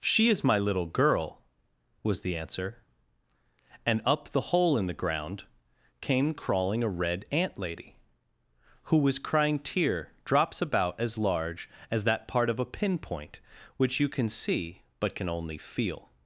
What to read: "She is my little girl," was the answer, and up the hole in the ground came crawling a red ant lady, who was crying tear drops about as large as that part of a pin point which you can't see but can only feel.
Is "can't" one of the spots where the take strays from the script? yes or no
yes